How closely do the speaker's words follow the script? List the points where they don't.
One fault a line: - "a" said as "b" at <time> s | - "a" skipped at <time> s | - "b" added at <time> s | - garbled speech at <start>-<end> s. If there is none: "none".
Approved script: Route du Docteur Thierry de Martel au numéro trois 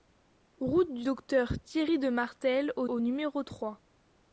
- "au" added at 2.9 s